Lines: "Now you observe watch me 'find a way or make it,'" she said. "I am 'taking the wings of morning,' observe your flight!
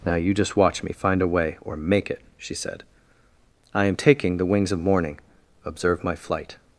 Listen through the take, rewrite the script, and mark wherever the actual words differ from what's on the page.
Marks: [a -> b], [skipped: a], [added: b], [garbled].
"Now you [observe -> just] watch me 'find a way or make it,'" she said. "I am 'taking the wings of morning,' observe [your -> my] flight!